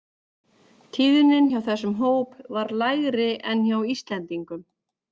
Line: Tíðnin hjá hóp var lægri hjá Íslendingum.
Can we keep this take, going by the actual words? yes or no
no